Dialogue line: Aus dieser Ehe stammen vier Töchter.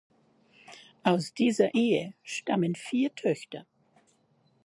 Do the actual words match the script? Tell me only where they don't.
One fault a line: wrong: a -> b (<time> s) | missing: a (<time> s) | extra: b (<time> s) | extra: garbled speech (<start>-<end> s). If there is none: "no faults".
no faults